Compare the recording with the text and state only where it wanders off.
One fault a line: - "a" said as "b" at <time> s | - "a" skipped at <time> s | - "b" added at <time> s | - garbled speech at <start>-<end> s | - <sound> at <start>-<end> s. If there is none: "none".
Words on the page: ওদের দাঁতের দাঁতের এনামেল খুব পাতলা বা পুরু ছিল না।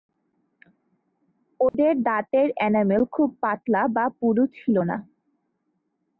- dropout at 1.7-1.7 s
- "দাঁতের" skipped at 2.5 s